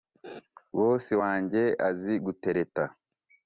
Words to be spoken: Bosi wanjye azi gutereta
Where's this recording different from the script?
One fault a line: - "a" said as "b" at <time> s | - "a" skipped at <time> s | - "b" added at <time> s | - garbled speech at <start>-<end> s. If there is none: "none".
none